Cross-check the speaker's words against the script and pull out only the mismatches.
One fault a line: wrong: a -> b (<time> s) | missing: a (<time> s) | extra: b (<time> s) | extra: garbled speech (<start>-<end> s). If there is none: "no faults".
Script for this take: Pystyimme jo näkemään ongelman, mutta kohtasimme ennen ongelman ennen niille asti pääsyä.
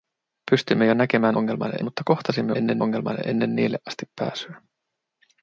no faults